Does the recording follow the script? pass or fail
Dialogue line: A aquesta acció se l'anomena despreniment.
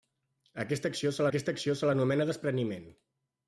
fail